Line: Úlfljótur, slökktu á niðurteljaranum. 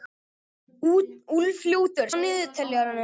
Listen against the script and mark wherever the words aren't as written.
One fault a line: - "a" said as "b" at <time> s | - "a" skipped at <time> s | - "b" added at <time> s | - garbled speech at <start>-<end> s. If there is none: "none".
- "slökktu" skipped at 2.1 s